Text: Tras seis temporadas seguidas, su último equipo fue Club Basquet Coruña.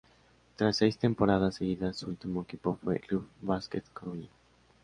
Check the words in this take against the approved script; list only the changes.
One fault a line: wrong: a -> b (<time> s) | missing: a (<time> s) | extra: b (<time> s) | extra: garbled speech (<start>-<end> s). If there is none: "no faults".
no faults